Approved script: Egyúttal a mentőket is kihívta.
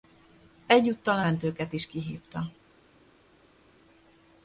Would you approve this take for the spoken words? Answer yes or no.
yes